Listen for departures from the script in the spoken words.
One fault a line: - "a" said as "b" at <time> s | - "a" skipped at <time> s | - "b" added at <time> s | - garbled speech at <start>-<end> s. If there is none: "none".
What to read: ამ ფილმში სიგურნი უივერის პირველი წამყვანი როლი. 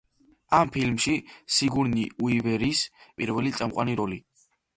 none